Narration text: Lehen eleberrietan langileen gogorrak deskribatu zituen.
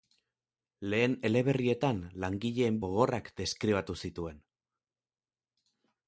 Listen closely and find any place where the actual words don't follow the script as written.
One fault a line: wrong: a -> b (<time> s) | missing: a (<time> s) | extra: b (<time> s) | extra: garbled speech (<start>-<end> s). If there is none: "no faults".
no faults